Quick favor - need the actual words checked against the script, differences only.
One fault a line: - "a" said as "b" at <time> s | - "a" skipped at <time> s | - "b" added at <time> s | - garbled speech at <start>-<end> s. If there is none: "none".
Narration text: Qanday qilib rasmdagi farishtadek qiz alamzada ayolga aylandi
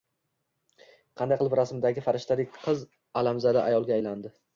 none